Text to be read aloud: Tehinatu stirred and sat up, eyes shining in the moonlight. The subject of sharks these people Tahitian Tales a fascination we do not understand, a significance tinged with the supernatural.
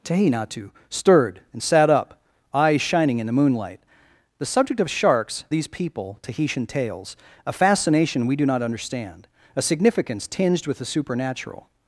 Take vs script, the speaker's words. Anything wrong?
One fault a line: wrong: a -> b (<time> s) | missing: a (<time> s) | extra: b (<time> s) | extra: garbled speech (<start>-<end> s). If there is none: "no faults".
no faults